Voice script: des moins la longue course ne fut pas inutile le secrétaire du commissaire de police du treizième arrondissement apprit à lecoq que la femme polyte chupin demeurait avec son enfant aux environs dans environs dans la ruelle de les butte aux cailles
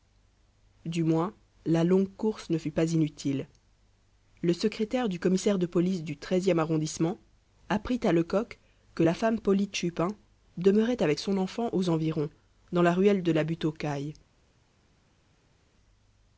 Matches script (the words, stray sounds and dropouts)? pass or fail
fail